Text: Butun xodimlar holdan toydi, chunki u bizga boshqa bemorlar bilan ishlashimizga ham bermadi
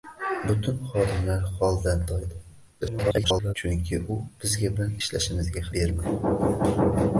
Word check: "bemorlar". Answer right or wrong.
wrong